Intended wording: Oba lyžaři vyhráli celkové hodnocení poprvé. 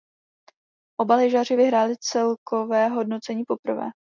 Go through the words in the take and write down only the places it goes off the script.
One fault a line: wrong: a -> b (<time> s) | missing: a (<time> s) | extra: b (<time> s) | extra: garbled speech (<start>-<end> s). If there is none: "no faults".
no faults